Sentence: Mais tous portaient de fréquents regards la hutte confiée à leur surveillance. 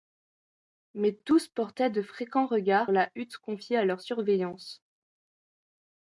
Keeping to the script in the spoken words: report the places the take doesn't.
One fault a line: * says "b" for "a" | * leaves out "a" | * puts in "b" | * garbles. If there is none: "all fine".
all fine